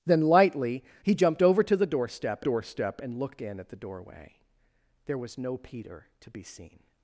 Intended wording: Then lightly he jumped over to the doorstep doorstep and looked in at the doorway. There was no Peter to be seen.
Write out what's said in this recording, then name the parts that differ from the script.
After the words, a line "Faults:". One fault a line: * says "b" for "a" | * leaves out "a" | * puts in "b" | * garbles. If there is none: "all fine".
Then lightly he jumped over to the doorstep doorstep and looked in at the doorway. There was no Peter to be seen.
Faults:
all fine